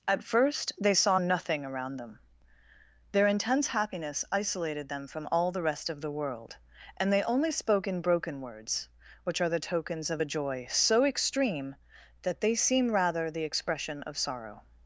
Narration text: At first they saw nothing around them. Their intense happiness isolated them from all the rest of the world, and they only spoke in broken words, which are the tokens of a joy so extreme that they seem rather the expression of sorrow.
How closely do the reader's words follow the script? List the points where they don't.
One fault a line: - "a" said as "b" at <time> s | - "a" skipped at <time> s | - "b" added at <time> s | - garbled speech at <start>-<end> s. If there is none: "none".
none